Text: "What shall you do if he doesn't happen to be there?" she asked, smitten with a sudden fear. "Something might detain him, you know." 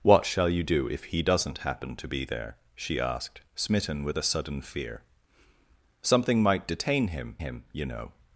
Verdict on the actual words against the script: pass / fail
fail